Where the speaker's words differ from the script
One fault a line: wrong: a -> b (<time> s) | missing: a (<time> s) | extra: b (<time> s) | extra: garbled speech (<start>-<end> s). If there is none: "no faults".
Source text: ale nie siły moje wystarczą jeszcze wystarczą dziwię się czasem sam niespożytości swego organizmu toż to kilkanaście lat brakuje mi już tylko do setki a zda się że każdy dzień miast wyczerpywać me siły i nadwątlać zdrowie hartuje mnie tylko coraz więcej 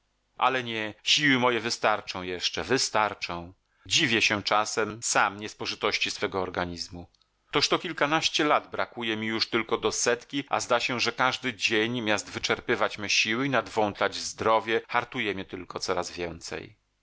no faults